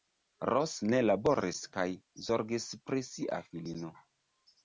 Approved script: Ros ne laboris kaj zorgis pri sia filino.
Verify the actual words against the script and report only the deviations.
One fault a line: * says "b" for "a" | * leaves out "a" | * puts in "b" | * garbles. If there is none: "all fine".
all fine